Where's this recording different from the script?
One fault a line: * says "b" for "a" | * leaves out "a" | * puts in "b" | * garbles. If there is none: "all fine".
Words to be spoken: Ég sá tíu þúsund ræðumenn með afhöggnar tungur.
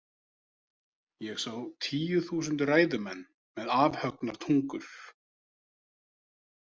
all fine